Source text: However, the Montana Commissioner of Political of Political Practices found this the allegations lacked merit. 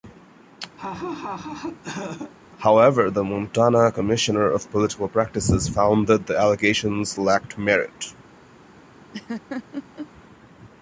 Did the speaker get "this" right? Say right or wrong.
wrong